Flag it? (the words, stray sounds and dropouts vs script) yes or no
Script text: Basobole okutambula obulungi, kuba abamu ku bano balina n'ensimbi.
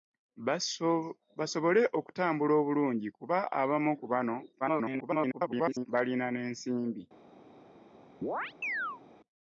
yes